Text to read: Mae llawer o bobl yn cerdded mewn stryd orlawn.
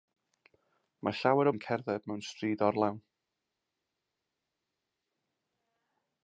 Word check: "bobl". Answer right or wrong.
wrong